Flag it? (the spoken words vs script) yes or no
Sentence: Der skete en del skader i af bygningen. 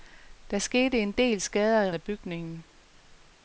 no